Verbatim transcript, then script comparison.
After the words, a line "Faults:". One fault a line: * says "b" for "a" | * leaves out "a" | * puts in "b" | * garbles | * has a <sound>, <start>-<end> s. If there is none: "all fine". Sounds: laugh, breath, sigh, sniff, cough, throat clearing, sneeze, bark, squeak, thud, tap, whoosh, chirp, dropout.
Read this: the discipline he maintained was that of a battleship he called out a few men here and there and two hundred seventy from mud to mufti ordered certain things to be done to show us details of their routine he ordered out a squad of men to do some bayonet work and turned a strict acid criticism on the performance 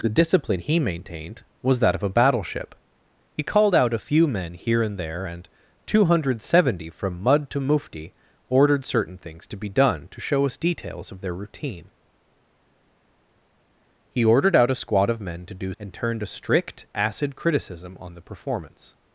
the discipline he maintained was that of a battleship he called out a few men here and there and two hundred seventy from mud to mufti ordered certain things to be done to show us details of their routine he ordered out a squad of men to do and turned a strict acid criticism on the performance
Faults:
* leaves out "some bayonet work"